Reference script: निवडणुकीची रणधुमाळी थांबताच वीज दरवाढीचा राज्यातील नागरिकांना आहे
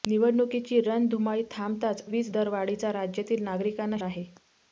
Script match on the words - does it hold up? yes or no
yes